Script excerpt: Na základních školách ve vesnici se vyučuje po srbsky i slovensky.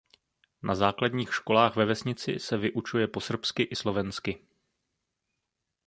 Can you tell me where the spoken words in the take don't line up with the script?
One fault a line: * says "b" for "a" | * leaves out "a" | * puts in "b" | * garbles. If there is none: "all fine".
all fine